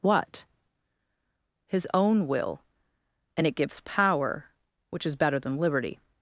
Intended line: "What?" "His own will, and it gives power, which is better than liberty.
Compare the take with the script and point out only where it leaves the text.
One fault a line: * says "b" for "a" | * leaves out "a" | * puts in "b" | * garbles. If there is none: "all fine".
all fine